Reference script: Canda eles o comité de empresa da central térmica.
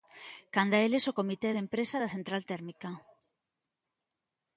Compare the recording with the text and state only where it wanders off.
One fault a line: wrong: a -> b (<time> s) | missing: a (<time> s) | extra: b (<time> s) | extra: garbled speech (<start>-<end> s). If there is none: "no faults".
no faults